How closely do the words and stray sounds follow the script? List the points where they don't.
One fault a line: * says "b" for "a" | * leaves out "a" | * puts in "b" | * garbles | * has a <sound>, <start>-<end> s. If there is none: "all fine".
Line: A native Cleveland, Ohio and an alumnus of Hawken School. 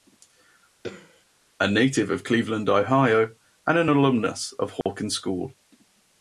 * has a throat clearing, 0.8-1.3 s
* puts in "of"
* has a dropout, 4.8-4.9 s